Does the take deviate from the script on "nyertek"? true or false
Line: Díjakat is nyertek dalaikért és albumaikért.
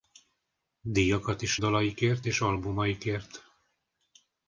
true